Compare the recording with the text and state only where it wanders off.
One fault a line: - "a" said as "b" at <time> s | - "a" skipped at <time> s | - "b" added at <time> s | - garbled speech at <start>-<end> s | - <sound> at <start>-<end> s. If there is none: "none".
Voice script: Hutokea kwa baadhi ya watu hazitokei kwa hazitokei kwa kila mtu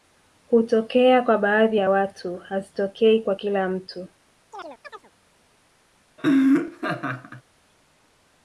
- "hazitokei kwa" skipped at 3.3 s
- chirp at 4.5-5.1 s
- laugh at 6.2-7.4 s